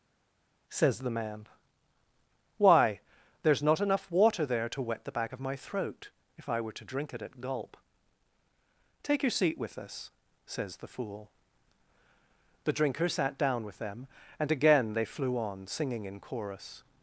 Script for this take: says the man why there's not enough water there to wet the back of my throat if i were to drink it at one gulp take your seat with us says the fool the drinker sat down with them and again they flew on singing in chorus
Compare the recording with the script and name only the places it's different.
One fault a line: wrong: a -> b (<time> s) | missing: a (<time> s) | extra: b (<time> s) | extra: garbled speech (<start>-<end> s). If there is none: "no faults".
missing: one (7.4 s)